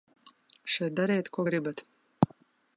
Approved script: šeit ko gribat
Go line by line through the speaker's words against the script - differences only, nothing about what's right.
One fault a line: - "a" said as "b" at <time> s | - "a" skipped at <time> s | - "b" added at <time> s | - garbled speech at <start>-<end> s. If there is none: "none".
- "dariet" added at 1.0 s